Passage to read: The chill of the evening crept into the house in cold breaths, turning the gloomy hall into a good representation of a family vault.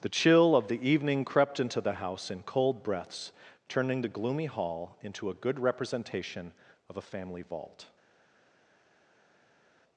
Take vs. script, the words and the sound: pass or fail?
pass